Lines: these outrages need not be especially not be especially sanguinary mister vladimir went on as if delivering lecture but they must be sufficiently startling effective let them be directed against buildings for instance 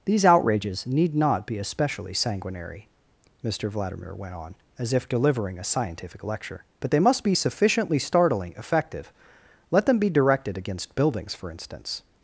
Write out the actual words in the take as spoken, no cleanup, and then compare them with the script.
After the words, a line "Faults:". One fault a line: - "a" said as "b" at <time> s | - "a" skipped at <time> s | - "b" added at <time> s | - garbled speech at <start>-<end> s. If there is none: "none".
these outrages need not be especially sanguinary mister vladimir went on as if delivering a scientific lecture but they must be sufficiently startling effective let them be directed against buildings for instance
Faults:
- "not be especially" skipped at 2.1 s
- "a scientific" added at 5.6 s